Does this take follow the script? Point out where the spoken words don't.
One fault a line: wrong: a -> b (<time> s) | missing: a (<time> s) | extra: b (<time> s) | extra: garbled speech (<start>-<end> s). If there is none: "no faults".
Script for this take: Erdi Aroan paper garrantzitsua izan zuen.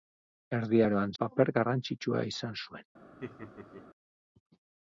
no faults